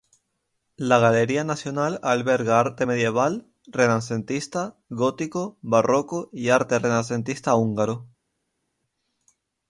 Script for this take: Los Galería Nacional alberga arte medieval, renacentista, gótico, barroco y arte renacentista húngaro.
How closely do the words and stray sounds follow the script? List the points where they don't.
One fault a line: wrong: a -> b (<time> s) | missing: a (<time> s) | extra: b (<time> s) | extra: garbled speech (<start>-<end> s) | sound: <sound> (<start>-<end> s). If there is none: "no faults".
wrong: Los -> La (0.8 s)